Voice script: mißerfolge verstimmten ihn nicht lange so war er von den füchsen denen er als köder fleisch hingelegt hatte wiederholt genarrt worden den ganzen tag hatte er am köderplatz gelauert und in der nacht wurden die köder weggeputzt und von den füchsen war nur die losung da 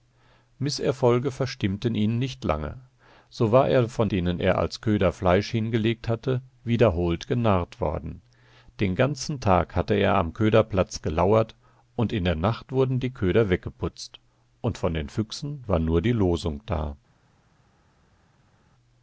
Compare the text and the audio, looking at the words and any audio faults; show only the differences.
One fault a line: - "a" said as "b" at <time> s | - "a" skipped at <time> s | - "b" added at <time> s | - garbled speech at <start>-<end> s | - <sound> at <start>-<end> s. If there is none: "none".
- "den füchsen" skipped at 4.1 s